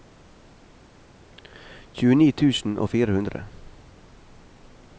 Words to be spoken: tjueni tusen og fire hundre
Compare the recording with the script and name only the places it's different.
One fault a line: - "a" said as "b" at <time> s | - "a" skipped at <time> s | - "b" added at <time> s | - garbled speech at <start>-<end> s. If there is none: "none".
none